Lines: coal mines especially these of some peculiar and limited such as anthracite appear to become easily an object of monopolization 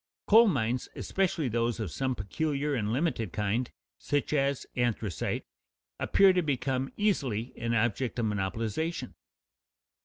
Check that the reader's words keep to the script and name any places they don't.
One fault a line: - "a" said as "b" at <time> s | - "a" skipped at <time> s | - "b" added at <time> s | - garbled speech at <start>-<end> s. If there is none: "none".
- "these" said as "those" at 1.5 s
- "kind" added at 3.3 s